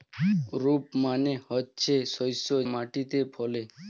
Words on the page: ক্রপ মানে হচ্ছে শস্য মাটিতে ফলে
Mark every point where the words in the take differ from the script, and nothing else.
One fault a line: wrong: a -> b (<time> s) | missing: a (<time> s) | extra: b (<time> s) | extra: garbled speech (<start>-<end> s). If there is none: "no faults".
no faults